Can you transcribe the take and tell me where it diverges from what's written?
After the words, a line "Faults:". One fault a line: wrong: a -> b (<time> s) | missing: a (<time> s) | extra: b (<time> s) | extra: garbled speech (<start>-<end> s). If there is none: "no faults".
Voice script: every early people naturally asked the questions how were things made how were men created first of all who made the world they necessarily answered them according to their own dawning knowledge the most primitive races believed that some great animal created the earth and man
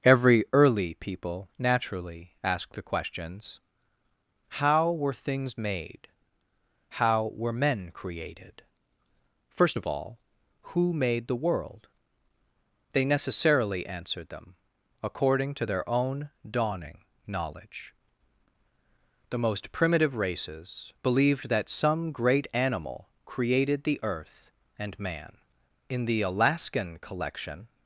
every early people naturally asked the questions how were things made how were men created first of all who made the world they necessarily answered them according to their own dawning knowledge the most primitive races believed that some great animal created the earth and man in the alaskan collection
Faults:
extra: in the alaskan collection (25.9 s)